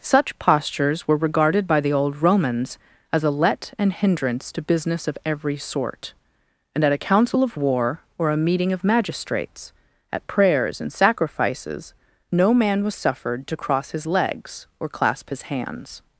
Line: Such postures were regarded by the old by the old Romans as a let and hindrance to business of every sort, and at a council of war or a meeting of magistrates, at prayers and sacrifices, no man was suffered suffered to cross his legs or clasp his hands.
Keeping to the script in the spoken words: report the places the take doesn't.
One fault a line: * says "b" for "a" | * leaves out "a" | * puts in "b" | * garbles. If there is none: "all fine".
* leaves out "by the old"
* leaves out "suffered"